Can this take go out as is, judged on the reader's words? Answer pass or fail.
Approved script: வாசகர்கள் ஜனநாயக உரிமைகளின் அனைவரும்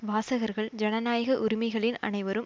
pass